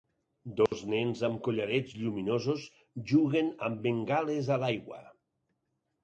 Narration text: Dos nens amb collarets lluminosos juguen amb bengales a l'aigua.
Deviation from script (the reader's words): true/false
false